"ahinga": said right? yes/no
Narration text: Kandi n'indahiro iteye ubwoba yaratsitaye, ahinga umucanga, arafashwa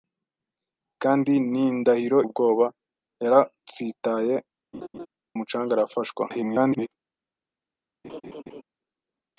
no